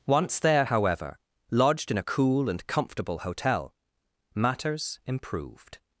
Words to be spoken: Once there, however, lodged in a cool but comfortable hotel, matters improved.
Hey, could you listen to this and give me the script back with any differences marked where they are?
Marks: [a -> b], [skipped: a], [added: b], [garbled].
Once there, however, lodged in a cool [but -> and] comfortable hotel, matters improved.